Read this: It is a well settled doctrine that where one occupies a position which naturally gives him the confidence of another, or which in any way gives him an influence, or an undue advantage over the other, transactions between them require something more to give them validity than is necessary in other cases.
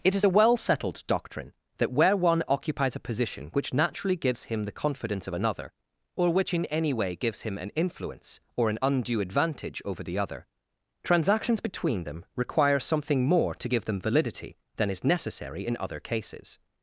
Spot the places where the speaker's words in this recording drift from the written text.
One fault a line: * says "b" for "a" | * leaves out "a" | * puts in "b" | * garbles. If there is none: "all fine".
all fine